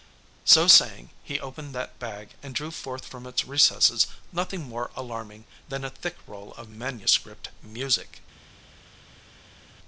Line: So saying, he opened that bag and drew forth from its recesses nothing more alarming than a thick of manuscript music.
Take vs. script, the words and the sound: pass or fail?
fail